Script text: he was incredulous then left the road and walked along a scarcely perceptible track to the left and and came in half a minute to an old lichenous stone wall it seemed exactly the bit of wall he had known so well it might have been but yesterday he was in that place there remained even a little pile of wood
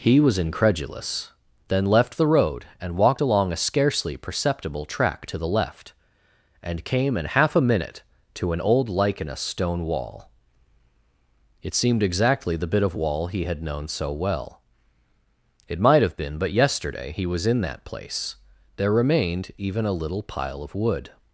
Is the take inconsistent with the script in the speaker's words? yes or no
yes